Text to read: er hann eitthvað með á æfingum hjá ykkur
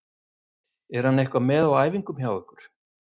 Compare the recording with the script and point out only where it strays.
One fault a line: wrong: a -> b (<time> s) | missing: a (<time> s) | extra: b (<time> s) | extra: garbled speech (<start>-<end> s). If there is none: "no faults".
no faults